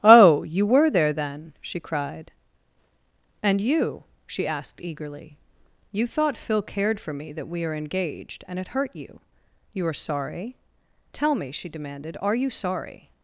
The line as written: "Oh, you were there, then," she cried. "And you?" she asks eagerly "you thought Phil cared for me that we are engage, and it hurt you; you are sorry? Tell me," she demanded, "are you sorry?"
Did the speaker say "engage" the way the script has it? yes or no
no